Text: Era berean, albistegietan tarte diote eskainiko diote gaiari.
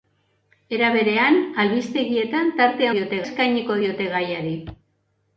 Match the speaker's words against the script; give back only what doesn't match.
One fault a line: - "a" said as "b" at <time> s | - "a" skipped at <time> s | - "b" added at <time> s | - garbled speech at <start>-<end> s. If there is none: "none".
none